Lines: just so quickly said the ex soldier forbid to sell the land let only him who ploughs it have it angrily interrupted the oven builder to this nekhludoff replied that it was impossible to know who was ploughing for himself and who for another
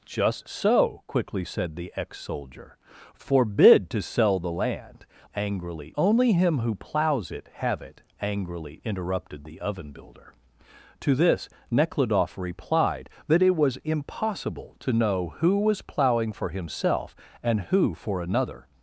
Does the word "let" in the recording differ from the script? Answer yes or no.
yes